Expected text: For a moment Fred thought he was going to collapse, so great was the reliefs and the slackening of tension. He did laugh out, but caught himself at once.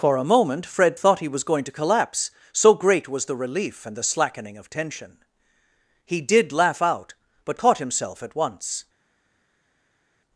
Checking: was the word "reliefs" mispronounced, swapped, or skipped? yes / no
yes